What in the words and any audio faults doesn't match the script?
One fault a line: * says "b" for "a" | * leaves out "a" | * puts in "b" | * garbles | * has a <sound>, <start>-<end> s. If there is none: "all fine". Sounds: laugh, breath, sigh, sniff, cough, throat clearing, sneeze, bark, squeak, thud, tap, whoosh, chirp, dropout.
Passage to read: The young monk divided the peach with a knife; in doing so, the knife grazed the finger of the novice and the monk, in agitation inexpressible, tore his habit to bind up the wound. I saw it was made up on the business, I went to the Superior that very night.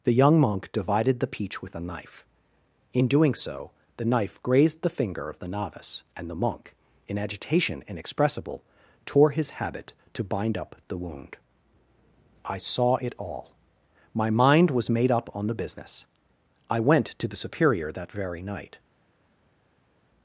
* puts in "all my mind"